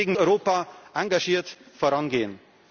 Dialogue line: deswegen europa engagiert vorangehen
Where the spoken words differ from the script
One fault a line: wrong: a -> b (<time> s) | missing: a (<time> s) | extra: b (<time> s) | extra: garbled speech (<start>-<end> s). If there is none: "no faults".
no faults